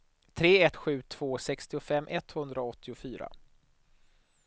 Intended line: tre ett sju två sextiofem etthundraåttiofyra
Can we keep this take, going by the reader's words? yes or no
yes